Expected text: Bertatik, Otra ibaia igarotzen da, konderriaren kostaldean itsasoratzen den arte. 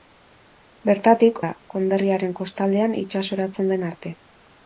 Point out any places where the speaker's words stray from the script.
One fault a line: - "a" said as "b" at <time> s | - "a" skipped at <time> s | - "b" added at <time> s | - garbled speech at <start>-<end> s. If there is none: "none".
- "Otra ibaia igarotzen" skipped at 1.4 s